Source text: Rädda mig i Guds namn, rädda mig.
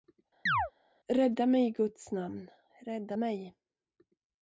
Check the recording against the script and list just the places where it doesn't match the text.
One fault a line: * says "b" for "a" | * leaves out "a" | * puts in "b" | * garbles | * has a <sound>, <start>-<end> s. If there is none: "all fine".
* has a chirp, 0.5-0.7 s